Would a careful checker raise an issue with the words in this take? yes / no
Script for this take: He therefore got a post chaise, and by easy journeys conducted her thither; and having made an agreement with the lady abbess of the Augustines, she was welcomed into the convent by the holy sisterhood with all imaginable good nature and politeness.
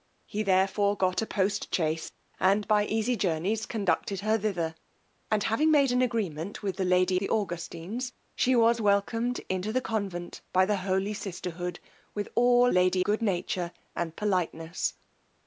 yes